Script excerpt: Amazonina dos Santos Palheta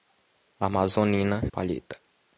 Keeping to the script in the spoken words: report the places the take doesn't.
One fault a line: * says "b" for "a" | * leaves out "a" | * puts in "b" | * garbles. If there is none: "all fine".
* leaves out "dos Santos"